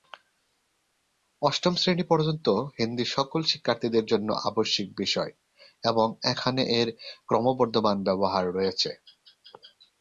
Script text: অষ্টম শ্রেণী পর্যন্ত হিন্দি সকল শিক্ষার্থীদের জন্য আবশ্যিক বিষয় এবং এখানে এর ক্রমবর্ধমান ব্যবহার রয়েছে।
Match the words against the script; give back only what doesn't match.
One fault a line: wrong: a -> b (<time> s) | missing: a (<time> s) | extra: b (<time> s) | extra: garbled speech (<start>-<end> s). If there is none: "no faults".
no faults